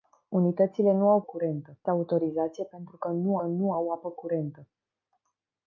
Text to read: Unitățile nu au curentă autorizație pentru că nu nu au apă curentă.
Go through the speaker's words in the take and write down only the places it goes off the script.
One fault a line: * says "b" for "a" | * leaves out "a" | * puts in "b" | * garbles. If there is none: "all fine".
all fine